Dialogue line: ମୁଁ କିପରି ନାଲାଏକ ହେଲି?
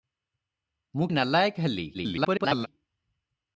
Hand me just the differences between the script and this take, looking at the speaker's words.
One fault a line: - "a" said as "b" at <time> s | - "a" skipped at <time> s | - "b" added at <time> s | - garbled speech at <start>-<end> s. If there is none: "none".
- "କିପରି" skipped at 1.1 s
- garbled speech at 1.9-2.7 s